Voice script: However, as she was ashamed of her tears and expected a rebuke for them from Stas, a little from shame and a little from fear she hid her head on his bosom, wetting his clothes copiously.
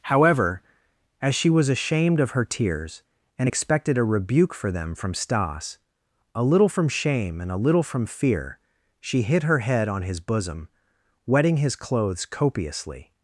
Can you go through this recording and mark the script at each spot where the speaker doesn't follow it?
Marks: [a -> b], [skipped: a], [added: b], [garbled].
However, as she was ashamed of her tears and expected a rebuke for them from Stas, a little from shame and a little from fear she hid her head on his bosom, wetting his clothes copiously.